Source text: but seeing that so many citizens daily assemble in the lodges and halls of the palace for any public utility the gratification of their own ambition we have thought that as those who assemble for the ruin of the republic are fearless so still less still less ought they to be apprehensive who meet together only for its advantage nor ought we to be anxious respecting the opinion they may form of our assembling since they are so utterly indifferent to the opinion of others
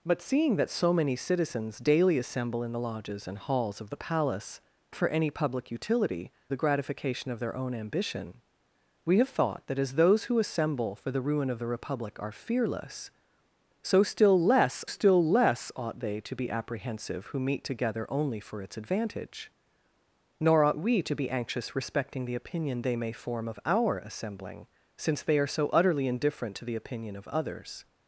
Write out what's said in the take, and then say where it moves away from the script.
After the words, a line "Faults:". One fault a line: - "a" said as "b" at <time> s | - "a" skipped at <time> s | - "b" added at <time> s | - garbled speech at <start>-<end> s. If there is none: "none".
but seeing that so many citizens daily assemble in the lodges and halls of the palace for any public utility the gratification of their own ambition we have thought that as those who assemble for the ruin of the republic are fearless so still less still less ought they to be apprehensive who meet together only for its advantage nor ought we to be anxious respecting the opinion they may form of our assembling since they are so utterly indifferent to the opinion of others
Faults:
none